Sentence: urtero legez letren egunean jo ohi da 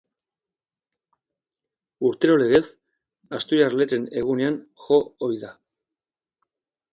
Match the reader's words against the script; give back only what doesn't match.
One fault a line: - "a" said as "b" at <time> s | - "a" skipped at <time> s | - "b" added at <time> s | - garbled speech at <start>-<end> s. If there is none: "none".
- "asturiar" added at 3.4 s